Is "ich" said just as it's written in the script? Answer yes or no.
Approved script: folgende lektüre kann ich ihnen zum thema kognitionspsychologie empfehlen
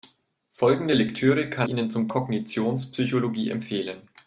no